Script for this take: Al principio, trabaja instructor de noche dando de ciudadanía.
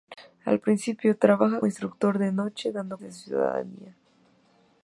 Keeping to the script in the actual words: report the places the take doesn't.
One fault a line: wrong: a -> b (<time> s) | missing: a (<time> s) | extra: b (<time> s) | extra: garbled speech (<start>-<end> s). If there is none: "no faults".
no faults